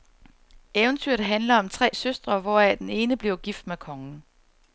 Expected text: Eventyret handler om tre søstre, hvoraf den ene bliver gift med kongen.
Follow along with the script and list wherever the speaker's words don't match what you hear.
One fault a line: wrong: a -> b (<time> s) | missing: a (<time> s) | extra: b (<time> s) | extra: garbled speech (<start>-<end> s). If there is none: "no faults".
no faults